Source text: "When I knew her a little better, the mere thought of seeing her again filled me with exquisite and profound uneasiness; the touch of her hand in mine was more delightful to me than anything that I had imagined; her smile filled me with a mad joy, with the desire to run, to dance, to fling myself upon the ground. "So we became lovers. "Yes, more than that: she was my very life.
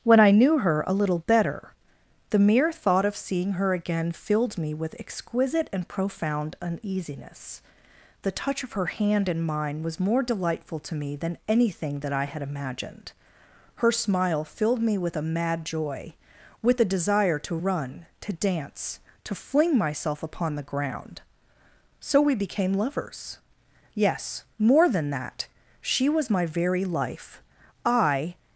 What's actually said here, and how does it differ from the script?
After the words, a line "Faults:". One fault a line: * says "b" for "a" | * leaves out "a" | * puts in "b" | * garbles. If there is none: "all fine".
"When I knew her a little better, the mere thought of seeing her again filled me with exquisite and profound uneasiness; the touch of her hand in mine was more delightful to me than anything that I had imagined; her smile filled me with a mad joy, with the desire to run, to dance, to fling myself upon the ground. "So we became lovers. "Yes, more than that: she was my very life. I
Faults:
* puts in "I"